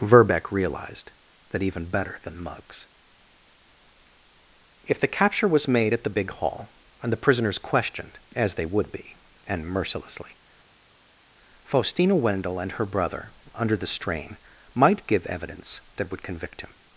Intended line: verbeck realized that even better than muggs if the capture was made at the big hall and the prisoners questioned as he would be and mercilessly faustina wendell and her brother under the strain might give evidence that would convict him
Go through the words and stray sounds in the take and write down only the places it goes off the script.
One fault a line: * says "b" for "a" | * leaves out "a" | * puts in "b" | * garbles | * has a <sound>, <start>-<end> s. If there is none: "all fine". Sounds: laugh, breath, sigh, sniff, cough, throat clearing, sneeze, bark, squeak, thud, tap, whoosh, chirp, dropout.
* says "they" for "he"